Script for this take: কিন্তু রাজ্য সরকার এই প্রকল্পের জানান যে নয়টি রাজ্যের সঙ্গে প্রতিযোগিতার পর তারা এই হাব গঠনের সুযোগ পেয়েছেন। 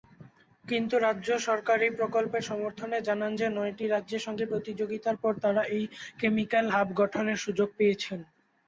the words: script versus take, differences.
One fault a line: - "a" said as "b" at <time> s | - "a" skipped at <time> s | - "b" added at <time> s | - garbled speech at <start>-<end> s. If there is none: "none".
- "সমর্থনে" added at 2.4 s
- "কেমিক্যাল" added at 6.2 s